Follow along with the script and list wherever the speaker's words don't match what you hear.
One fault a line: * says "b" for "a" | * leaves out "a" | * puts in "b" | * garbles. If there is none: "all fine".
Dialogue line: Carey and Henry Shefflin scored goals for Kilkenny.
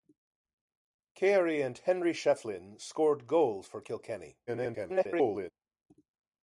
* garbles